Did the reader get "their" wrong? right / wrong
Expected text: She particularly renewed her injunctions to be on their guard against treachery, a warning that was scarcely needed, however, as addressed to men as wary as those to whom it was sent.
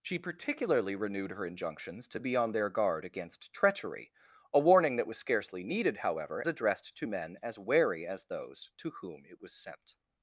right